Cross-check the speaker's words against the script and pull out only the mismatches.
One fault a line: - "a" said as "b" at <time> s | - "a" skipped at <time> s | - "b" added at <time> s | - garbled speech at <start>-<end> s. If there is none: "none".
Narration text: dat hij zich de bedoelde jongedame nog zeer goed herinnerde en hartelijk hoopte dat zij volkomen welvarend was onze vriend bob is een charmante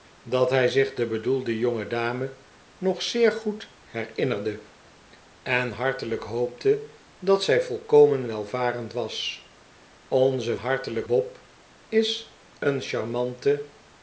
- "vriend" said as "hartelijk" at 10.5 s